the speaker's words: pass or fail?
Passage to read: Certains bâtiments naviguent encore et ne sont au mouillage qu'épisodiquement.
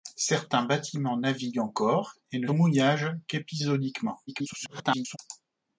fail